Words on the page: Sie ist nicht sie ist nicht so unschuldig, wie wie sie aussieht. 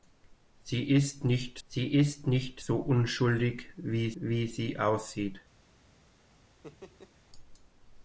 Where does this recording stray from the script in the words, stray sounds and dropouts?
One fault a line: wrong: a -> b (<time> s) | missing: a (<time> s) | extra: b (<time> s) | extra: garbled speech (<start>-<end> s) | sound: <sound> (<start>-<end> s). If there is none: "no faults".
sound: laugh (6.6-7.1 s)